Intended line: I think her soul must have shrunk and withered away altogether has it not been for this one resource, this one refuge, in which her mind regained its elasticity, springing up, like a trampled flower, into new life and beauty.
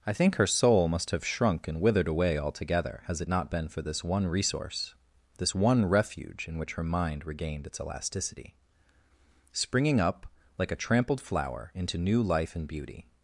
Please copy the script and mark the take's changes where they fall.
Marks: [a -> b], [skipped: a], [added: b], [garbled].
I think her soul must have shrunk and withered away altogether has it not been for this one resource, this one refuge, in which her mind regained its elasticity, springing up, like a trampled flower, into new life and beauty.